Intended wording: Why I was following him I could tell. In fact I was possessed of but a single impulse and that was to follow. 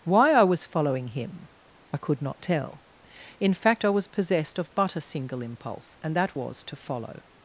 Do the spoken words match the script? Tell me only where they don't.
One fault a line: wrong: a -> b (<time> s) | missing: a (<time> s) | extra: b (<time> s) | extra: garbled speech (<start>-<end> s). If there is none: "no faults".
extra: not (2.2 s)